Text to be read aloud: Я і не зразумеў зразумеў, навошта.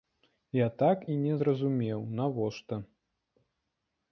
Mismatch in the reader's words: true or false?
true